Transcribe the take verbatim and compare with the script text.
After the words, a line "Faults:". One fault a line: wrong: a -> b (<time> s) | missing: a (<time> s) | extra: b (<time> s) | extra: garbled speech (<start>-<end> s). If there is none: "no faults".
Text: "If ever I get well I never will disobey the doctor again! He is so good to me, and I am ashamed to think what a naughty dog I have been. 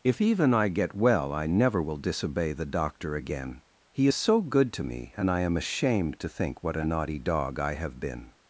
"If even I get well I never will disobey the doctor again! He is so good to me, and I am ashamed to think what a naughty dog I have been.
Faults:
wrong: ever -> even (0.2 s)